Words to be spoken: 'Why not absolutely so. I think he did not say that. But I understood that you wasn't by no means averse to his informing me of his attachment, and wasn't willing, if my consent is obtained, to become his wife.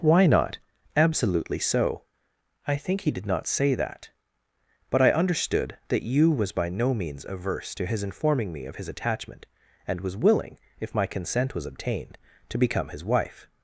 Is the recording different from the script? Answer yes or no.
yes